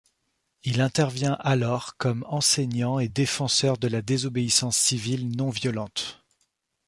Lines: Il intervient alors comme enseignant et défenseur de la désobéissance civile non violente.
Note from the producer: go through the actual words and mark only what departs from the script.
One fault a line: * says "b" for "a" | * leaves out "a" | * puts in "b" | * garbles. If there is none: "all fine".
all fine